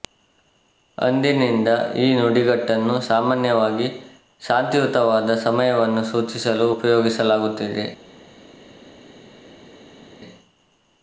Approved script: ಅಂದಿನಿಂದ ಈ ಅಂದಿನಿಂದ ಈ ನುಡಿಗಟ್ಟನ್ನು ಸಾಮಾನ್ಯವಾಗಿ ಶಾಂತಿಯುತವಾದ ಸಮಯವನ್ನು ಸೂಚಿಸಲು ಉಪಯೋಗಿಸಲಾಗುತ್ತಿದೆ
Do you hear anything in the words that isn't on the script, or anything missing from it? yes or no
yes